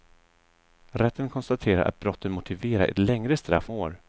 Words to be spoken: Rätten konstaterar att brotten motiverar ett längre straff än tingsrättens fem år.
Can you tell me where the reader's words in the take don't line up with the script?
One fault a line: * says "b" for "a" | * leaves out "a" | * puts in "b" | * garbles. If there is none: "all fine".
* leaves out "än tingsrättens fem"